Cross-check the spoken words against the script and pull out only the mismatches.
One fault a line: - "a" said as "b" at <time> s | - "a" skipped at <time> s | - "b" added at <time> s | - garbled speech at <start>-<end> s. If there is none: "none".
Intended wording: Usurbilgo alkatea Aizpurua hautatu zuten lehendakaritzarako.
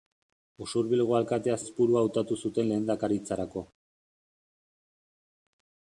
none